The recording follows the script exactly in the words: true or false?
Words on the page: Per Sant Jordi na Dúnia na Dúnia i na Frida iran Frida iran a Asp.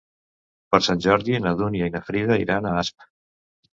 false